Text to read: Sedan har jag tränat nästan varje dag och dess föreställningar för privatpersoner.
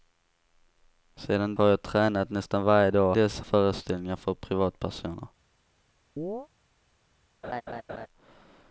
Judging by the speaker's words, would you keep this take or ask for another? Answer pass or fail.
pass